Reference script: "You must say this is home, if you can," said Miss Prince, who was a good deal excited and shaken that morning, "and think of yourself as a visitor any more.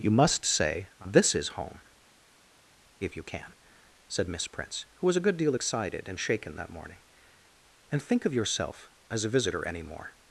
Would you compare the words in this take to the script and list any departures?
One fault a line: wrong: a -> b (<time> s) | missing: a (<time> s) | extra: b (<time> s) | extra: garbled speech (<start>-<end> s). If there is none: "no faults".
no faults